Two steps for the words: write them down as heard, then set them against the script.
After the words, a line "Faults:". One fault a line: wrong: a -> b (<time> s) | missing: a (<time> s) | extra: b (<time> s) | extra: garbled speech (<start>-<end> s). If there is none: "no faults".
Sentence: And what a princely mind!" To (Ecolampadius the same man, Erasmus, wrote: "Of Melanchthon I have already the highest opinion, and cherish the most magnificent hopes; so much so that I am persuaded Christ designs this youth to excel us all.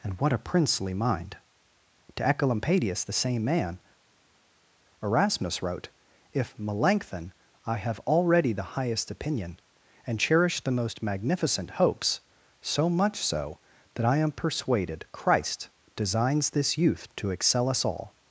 And what a princely mind!" To (Ecolampadius the same man, Erasmus, wrote: "If Melanchthon I have already the highest opinion, and cherish the most magnificent hopes; so much so that I am persuaded Christ designs this youth to excel us all.
Faults:
wrong: Of -> If (6.3 s)